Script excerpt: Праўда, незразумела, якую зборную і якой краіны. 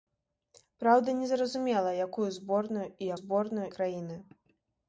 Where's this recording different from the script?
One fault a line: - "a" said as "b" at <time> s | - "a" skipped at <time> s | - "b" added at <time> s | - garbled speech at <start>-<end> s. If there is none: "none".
- "якой" said as "зборную" at 3.2 s